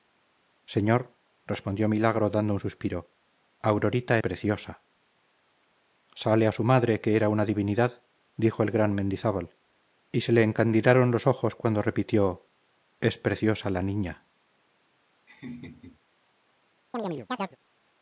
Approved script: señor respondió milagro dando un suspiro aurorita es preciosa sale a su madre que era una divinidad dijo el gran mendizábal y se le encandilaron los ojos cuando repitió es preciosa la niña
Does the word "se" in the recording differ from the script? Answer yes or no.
no